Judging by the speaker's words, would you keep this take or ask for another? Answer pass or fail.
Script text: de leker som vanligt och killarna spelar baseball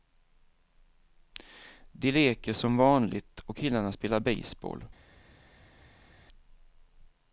pass